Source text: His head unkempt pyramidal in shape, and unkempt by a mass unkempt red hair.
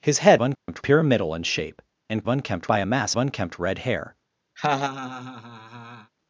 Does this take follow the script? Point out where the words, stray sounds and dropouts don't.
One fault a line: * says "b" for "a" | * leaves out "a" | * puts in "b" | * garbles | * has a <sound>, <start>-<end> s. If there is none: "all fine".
* has a dropout, 0.5-0.7 s
* has a laugh, 4.6-6.1 s